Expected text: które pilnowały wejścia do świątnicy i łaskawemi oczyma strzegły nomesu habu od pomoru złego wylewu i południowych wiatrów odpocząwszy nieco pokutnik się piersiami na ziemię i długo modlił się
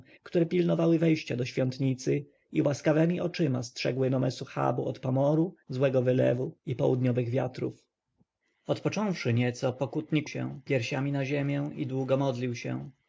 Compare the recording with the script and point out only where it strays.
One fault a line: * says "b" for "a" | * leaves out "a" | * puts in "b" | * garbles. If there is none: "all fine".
all fine